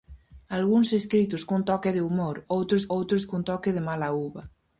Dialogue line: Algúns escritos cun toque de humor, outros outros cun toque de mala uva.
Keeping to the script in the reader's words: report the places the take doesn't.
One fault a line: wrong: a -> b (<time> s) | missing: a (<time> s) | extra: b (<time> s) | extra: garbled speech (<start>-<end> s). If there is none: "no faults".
no faults